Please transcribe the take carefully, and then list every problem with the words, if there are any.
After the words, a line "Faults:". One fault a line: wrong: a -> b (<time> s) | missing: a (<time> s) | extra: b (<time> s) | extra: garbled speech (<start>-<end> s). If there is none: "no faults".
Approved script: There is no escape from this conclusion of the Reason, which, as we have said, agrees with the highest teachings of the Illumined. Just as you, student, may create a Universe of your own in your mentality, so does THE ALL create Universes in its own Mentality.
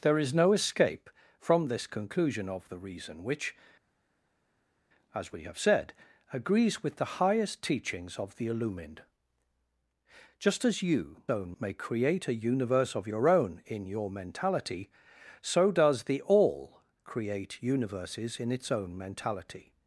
There is no escape from this conclusion of the Reason, which, as we have said, agrees with the highest teachings of the Illumined. Just as you, own, may create a Universe of your own in your mentality, so does THE ALL create Universes in its own Mentality.
Faults:
wrong: student -> own (11.3 s)